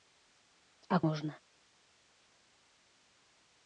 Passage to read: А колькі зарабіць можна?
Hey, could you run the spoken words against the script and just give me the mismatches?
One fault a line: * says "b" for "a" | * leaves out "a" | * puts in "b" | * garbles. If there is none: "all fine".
* leaves out "колькі зарабіць"